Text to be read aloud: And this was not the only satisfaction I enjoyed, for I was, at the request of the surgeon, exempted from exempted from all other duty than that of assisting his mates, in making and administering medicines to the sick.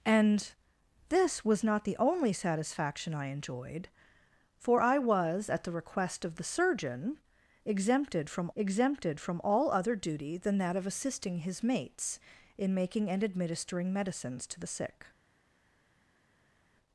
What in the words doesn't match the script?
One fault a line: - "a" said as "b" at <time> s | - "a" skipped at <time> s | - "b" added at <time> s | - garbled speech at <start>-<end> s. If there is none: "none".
none